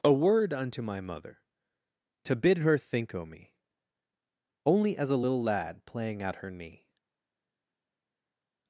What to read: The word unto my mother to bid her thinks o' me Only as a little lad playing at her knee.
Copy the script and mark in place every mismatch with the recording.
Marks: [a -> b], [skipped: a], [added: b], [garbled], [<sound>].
[The -> A] word unto my mother to bid her [thinks -> think] o' me Only as a little lad playing at her knee.